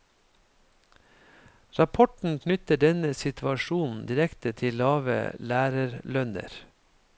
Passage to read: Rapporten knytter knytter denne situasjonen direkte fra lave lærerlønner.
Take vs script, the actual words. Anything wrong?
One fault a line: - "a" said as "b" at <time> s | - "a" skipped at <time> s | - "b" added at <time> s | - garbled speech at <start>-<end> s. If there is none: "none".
- "knytter" skipped at 2.8 s
- "fra" said as "til" at 4.6 s